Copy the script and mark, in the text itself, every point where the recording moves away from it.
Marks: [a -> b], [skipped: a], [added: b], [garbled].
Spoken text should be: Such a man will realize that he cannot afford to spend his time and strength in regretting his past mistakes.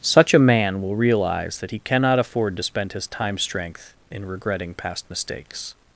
Such a man will realize that he cannot afford to spend his time [skipped: and] strength in regretting [skipped: his] past mistakes.